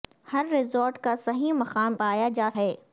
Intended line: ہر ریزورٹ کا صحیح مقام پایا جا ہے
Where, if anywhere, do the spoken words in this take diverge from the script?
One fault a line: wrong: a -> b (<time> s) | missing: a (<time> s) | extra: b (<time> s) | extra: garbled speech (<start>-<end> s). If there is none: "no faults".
no faults